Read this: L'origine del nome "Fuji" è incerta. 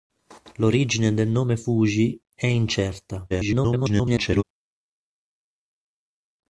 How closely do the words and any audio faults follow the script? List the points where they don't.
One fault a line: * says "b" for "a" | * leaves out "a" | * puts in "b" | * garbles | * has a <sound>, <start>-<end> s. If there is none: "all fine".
* garbles